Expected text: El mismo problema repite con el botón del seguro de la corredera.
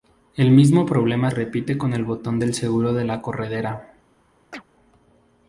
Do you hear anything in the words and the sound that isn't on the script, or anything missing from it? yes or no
yes